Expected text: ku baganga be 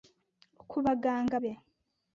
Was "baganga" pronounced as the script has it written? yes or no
yes